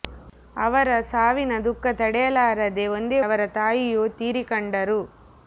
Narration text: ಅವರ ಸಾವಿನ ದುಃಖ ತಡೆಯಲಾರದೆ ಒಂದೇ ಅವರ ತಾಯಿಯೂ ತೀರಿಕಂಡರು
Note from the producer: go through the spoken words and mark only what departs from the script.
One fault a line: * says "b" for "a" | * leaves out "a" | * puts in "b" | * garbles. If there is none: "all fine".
all fine